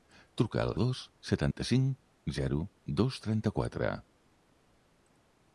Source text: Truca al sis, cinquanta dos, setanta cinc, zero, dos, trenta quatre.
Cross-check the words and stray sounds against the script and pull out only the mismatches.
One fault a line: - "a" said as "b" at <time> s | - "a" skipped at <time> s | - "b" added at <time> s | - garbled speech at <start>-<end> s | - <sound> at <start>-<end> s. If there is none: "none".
- "sis cinquanta" skipped at 0.7 s
- dropout at 1.5-1.6 s